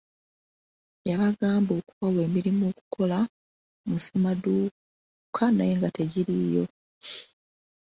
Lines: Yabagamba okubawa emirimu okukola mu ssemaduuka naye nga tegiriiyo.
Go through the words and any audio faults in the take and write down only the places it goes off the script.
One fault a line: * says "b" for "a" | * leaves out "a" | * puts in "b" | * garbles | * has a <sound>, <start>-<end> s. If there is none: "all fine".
all fine